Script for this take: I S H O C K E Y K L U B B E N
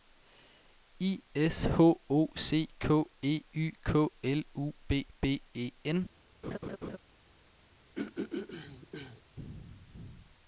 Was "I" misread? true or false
false